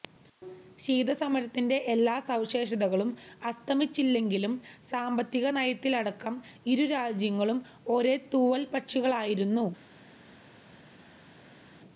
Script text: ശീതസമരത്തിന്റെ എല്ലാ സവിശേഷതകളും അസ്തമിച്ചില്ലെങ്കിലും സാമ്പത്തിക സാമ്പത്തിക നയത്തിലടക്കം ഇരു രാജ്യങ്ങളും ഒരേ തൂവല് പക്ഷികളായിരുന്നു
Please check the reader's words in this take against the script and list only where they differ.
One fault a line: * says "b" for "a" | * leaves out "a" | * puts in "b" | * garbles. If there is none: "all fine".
* leaves out "സാമ്പത്തിക"